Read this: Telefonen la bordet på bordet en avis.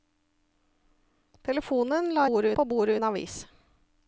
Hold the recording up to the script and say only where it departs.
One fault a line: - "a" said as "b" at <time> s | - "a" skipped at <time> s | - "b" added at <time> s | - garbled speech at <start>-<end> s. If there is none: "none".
none